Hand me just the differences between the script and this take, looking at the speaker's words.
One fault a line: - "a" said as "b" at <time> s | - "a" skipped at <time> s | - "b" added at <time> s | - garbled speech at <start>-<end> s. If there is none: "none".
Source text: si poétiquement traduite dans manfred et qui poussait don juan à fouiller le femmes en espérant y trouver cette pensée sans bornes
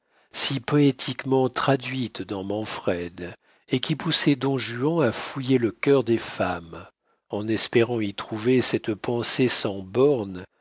- "cœur des" added at 5.7 s